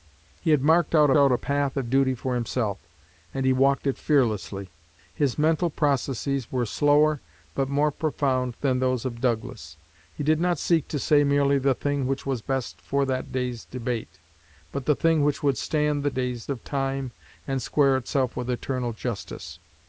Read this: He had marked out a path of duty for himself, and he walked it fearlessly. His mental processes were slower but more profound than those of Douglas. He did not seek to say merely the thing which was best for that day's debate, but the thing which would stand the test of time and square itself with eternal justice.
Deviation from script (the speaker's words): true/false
true